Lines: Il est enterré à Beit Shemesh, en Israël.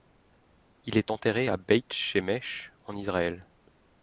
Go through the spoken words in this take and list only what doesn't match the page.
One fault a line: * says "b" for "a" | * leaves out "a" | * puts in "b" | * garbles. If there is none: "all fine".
all fine